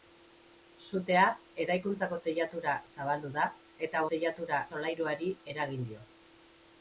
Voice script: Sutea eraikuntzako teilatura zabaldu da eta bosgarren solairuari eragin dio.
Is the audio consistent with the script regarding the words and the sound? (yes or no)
no